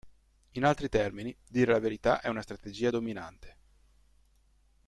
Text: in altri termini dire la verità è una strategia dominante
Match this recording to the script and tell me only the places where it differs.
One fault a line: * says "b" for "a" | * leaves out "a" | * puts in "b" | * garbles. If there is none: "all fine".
all fine